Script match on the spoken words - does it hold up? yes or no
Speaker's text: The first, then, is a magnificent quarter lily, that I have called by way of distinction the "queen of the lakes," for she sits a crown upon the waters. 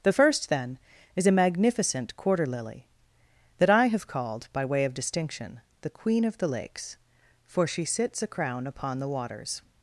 yes